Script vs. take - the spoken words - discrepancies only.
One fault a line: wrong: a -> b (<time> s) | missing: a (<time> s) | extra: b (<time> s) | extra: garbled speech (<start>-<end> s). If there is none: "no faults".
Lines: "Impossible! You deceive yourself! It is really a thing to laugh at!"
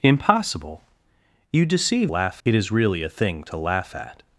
wrong: yourself -> laugh (2.0 s)